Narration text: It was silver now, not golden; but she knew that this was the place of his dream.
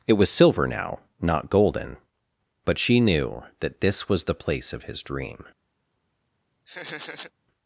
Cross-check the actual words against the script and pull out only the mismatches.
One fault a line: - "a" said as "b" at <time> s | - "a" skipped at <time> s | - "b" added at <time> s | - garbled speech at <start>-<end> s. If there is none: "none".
none